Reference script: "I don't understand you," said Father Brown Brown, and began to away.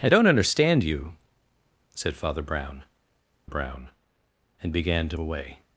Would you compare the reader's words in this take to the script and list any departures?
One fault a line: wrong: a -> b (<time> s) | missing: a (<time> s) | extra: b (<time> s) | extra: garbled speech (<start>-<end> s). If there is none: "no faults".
no faults